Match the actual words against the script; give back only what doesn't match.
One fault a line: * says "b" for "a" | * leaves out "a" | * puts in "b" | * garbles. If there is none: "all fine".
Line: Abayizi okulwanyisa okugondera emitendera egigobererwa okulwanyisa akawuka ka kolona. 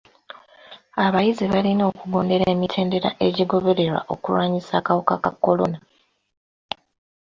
* says "balina" for "okulwanyisa"